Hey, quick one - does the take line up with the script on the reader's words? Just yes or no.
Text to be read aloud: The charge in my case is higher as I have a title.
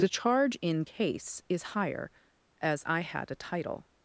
no